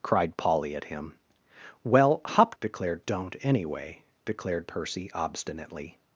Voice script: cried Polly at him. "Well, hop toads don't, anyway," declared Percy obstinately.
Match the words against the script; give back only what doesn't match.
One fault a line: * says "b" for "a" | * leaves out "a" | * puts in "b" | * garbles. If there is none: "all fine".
* says "declared" for "toads"